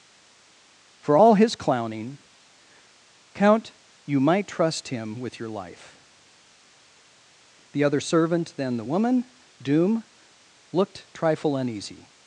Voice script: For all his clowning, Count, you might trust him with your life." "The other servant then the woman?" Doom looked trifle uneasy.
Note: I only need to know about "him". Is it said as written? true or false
true